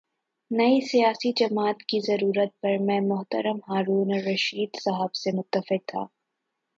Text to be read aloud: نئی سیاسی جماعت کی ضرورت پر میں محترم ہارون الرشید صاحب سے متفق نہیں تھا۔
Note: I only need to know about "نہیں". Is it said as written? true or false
false